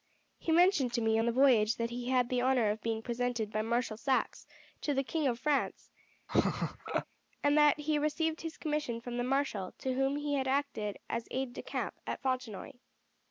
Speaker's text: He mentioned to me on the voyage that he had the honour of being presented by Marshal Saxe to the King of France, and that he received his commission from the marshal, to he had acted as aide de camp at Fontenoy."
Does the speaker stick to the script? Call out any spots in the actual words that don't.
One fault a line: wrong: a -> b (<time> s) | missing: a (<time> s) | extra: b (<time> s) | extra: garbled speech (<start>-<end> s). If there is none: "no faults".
extra: whom (9.9 s)